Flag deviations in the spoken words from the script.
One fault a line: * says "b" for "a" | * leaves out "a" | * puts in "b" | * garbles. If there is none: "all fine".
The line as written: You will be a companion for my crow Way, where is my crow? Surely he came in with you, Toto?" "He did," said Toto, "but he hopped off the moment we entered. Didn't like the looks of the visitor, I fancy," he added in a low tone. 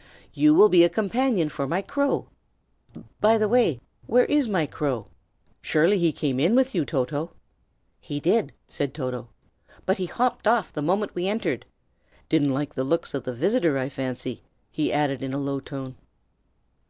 * puts in "By the"